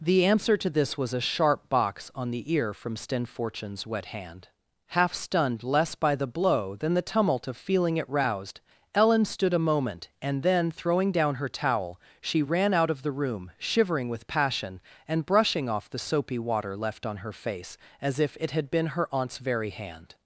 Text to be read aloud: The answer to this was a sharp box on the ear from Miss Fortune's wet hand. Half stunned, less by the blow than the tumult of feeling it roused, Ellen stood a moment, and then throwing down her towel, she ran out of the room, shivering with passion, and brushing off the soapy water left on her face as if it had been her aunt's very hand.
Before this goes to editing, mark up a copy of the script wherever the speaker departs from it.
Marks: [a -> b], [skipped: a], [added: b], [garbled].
The answer to this was a sharp box on the ear from [Miss -> Sten] Fortune's wet hand. Half stunned, less by the blow than the tumult of feeling it roused, Ellen stood a moment, and then throwing down her towel, she ran out of the room, shivering with passion, and brushing off the soapy water left on her face as if it had been her aunt's very hand.